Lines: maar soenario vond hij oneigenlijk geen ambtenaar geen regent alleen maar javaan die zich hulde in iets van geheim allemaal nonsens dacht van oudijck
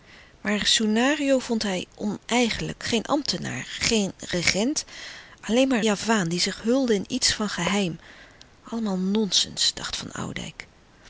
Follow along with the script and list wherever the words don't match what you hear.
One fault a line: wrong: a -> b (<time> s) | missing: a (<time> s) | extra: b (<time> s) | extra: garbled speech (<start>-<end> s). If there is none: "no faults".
no faults